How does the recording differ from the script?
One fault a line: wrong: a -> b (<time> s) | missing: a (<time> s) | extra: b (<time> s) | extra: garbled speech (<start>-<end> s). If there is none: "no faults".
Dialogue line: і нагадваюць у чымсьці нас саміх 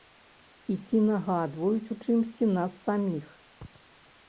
extra: ці (0.9 s)